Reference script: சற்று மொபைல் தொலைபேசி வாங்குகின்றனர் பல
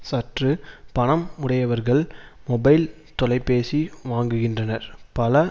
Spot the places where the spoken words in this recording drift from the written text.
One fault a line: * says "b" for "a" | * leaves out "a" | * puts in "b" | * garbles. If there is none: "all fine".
* puts in "பணம் உடையவர்கள்"